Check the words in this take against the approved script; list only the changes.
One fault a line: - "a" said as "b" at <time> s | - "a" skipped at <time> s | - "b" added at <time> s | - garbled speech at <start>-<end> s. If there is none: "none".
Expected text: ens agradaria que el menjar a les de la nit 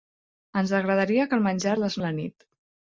none